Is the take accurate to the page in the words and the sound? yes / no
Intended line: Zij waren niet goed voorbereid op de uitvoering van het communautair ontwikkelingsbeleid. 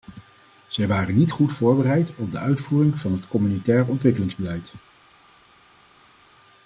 yes